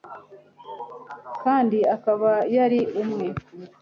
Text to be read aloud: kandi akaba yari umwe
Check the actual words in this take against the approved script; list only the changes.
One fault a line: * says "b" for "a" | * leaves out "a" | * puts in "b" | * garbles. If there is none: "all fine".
all fine